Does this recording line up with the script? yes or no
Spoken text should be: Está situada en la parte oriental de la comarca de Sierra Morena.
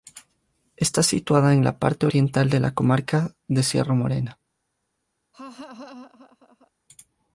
yes